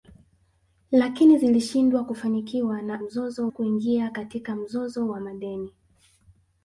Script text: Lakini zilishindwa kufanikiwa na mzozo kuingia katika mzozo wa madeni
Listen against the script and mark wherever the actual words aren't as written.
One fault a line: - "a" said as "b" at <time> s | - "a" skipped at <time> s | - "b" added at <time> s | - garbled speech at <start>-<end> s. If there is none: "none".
none